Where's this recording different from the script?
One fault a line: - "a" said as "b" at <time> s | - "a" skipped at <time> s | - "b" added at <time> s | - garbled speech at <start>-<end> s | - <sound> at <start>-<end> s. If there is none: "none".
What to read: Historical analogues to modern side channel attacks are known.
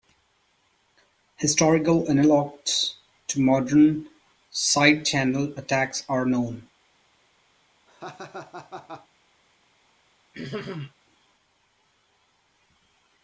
- laugh at 7.9-9.1 s
- throat clearing at 10.3-10.9 s